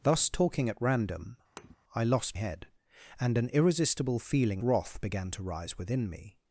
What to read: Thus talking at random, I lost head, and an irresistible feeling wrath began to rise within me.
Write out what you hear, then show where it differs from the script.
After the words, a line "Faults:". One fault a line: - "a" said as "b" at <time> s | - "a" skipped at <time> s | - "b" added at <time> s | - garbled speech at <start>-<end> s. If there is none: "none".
Thus talking at random, I lost head, and an irresistible feeling wrath began to rise within me.
Faults:
none